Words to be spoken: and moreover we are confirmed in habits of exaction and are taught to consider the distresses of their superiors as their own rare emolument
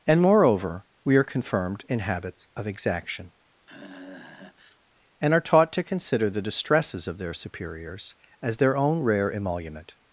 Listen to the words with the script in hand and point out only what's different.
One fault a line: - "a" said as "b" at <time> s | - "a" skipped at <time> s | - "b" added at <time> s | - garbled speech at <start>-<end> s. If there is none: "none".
none